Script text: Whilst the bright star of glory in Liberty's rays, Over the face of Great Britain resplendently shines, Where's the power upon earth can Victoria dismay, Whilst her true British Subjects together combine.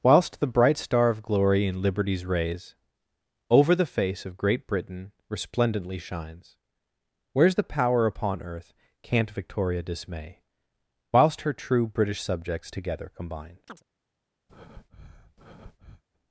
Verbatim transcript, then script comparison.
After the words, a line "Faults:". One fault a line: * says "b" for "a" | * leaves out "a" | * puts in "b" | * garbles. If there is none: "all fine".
Whilst the bright star of glory in Liberty's rays, Over the face of Great Britain resplendently shines, Where's the power upon earth can't Victoria dismay, Whilst her true British Subjects together combine.
Faults:
* says "can't" for "can"